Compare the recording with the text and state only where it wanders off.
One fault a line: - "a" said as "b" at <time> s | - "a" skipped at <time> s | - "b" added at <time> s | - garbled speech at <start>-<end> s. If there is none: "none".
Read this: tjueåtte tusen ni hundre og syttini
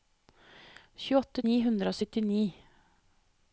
- "tusen" skipped at 1.4 s